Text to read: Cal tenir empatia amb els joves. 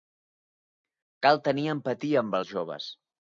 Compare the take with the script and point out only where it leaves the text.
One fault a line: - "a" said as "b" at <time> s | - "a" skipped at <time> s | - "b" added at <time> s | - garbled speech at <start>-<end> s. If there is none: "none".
none